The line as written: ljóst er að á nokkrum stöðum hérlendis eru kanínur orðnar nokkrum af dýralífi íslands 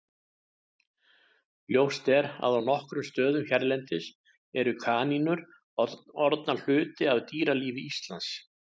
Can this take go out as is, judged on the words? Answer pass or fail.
fail